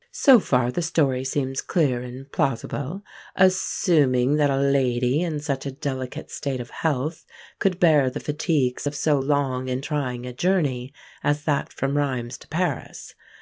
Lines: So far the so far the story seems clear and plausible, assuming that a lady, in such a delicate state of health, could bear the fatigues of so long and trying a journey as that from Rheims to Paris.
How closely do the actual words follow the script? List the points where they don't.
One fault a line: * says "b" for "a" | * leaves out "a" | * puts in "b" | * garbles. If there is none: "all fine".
* leaves out "so far the"